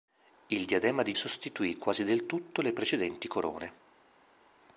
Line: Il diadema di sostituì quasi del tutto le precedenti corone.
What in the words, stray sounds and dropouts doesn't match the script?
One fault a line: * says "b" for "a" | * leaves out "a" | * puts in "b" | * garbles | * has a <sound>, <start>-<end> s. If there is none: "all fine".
all fine